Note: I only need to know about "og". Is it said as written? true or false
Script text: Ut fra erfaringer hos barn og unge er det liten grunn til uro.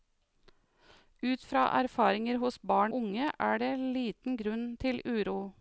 false